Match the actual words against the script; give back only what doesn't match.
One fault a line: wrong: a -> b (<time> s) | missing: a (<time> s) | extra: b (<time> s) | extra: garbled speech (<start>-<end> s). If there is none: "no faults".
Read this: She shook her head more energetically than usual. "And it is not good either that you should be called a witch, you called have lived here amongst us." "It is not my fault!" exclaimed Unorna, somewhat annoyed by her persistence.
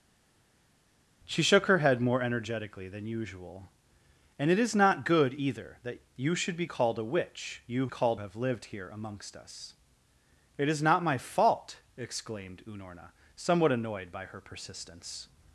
no faults